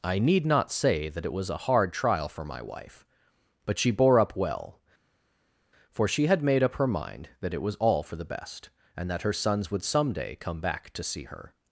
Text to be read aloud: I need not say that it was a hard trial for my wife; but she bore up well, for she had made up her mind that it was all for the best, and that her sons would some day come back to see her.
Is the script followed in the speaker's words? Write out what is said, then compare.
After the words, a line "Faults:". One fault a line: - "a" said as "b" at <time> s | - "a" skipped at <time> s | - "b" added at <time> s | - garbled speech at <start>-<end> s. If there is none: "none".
I need not say that it was a hard trial for my wife; but she bore up well, for she had made up her mind that it was all for the best, and that her sons would some day come back to see her.
Faults:
none